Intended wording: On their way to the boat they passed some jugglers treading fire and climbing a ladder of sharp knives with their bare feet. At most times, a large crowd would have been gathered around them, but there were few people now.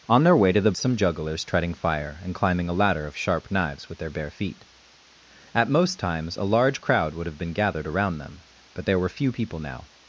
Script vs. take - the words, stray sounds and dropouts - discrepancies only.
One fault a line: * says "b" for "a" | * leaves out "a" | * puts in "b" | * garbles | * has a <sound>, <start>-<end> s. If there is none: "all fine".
* leaves out "boat they passed"